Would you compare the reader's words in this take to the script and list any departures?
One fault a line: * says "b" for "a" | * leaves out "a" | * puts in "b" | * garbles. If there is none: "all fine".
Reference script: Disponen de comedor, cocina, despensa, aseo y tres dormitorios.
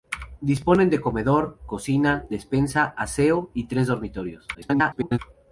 * garbles